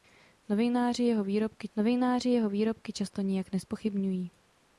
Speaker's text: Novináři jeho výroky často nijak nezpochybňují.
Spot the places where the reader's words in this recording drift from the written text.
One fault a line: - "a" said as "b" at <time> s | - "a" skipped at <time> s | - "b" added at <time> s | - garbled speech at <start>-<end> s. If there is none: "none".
- "novináři jeho výroky" added at 1.8 s